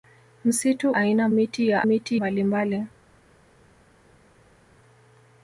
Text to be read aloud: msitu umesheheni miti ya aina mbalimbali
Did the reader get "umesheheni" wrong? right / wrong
wrong